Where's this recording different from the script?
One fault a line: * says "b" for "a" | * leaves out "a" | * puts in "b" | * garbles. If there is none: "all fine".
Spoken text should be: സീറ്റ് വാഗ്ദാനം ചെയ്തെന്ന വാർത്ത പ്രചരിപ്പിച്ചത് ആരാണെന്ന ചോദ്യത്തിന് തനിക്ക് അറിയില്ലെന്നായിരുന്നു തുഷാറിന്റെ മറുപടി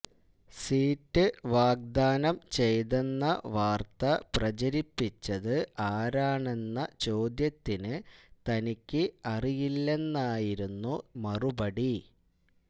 * leaves out "തുഷാറിന്റെ"